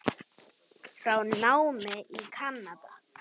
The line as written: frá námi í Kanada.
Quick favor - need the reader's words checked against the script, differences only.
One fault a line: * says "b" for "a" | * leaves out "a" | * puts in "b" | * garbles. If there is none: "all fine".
all fine